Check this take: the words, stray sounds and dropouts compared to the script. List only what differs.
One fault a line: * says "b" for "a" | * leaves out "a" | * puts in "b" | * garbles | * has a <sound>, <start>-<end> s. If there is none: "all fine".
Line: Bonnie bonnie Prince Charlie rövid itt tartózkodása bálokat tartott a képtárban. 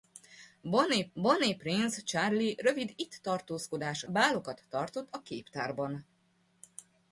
all fine